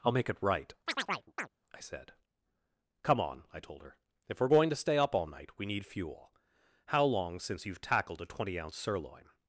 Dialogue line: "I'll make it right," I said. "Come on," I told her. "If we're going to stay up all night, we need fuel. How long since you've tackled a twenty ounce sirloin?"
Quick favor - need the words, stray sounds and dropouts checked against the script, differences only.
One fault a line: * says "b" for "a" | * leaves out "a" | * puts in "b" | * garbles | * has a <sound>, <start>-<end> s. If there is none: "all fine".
* has a chirp, 0.9-1.5 s